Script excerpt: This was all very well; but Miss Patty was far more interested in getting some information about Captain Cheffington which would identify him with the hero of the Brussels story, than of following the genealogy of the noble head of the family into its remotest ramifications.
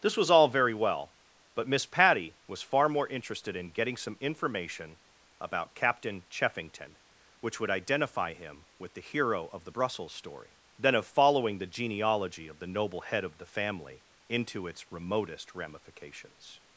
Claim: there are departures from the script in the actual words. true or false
false